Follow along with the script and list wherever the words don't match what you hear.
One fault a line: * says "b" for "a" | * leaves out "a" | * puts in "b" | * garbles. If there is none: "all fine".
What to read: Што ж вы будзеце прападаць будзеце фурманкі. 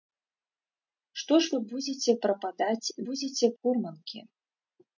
all fine